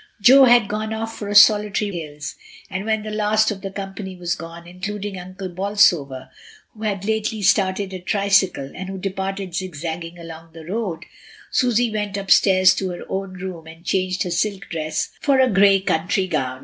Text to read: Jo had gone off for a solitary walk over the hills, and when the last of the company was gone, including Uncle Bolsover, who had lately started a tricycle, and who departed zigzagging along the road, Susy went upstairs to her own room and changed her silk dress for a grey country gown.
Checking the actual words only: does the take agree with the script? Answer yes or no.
no